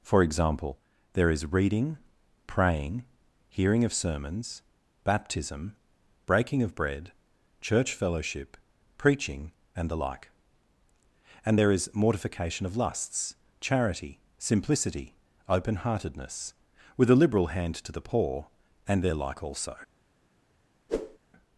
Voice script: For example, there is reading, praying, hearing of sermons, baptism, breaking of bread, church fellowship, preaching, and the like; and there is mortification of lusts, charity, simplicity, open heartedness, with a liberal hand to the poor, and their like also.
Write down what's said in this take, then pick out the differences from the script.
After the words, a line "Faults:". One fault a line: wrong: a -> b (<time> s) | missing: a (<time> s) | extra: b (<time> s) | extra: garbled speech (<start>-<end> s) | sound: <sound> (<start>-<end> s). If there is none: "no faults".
For example, there is reading, praying, hearing of sermons, baptism, breaking of bread, church fellowship, preaching, and the like; and there is mortification of lusts, charity, simplicity, open heartedness, with a liberal hand to the poor, and their like also.
Faults:
sound: whoosh (20.9-21.2 s)